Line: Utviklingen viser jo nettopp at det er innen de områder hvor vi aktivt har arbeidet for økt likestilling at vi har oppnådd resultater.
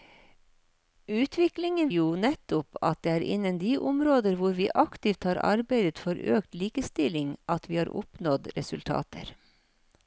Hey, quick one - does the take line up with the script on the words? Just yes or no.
no